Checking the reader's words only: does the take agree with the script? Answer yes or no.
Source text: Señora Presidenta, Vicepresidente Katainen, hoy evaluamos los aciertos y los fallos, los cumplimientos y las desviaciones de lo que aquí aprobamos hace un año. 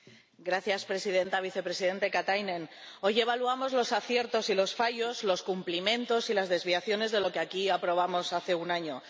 yes